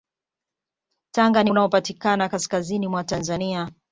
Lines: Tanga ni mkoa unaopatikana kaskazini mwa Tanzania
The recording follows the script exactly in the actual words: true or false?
false